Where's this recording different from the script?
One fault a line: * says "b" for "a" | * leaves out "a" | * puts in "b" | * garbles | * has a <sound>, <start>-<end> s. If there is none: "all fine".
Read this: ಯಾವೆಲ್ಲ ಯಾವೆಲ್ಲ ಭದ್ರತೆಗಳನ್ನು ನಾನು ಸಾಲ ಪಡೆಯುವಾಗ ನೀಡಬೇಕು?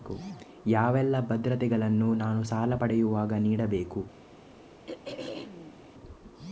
* leaves out "ಯಾವೆಲ್ಲ"
* has a throat clearing, 4.9-5.8 s